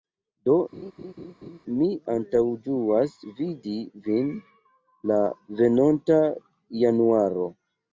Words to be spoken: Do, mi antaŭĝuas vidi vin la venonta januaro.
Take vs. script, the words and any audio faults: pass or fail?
fail